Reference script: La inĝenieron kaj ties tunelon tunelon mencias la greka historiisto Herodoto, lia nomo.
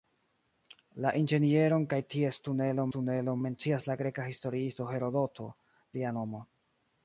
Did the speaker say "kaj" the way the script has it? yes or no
yes